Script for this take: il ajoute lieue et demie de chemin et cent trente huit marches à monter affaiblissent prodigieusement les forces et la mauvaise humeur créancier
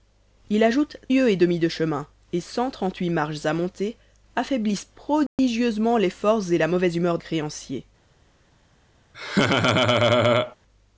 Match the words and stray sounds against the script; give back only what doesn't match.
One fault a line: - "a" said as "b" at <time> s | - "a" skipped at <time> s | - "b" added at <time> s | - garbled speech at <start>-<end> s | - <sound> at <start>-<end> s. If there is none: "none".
- dropout at 5.3-5.4 s
- laugh at 9.1-10.6 s